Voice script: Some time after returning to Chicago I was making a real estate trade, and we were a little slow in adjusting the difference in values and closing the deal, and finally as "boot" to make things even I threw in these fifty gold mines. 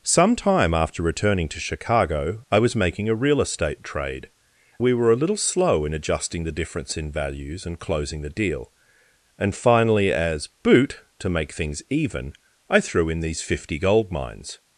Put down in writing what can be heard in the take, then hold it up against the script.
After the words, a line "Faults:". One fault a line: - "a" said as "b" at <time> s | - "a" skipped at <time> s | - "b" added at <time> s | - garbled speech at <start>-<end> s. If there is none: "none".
Some time after returning to Chicago I was making a real estate trade, we were a little slow in adjusting the difference in values and closing the deal, and finally as "boot" to make things even I threw in these fifty gold mines.
Faults:
- "and" skipped at 4.3 s